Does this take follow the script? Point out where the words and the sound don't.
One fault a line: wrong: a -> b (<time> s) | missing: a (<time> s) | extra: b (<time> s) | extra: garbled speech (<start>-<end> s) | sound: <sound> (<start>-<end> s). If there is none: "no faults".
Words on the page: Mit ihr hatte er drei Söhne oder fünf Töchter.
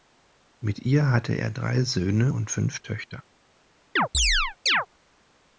wrong: oder -> und (2.3 s)
sound: chirp (4.0-4.9 s)